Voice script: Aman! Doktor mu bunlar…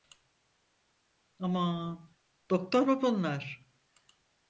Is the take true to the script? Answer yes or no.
yes